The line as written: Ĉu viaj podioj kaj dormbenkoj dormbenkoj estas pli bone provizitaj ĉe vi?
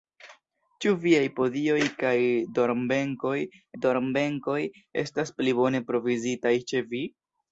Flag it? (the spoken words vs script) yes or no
no